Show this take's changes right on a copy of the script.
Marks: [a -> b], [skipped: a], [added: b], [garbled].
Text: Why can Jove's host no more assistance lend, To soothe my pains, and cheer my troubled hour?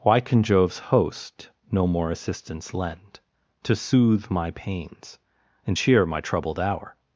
Why can Jove's host no more assistance lend, To soothe my pains, and cheer my troubled hour?